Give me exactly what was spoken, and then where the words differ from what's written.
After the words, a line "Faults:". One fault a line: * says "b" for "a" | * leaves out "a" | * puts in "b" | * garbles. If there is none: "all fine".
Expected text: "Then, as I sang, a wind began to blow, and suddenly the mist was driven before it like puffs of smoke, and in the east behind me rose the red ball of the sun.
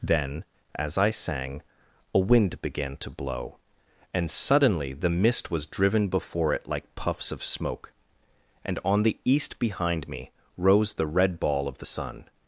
"Then, as I sang, a wind began to blow, and suddenly the mist was driven before it like puffs of smoke, and on the east behind me rose the red ball of the sun.
Faults:
* says "on" for "in"